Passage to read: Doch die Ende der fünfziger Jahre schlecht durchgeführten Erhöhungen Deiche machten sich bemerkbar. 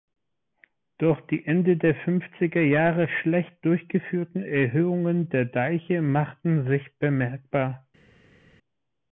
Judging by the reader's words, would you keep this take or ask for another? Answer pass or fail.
fail